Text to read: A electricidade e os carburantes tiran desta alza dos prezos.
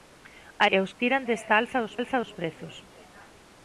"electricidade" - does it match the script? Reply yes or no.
no